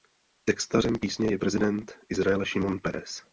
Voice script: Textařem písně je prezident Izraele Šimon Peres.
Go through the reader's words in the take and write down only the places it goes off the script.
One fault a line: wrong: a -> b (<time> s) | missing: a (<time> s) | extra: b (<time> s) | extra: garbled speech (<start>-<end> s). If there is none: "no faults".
no faults